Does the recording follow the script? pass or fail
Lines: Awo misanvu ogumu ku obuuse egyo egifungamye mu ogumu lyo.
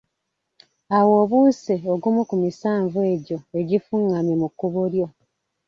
fail